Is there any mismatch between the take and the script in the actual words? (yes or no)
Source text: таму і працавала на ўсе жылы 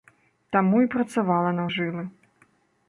yes